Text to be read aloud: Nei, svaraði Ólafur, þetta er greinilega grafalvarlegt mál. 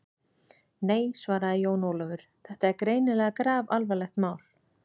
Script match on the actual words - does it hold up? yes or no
no